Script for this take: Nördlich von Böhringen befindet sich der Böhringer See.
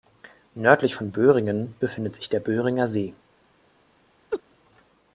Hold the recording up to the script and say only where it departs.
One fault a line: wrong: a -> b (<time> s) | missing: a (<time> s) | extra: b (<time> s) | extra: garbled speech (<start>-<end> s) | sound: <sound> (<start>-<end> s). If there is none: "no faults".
sound: laugh (4.3-4.4 s)